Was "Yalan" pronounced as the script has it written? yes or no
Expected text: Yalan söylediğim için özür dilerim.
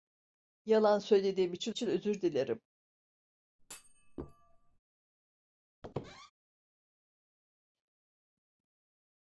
yes